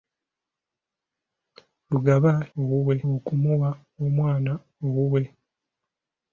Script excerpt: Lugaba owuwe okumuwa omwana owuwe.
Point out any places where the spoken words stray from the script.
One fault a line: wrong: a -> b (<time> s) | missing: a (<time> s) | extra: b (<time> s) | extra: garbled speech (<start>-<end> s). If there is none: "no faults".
no faults